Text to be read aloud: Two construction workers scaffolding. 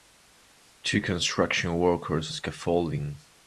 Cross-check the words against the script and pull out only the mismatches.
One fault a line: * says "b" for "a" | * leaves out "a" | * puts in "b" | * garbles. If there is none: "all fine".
all fine